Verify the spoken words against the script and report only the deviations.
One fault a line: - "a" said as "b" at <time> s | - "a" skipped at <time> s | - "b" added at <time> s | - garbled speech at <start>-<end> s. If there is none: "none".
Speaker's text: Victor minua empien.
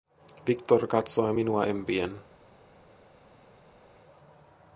- "katsoi" added at 0.9 s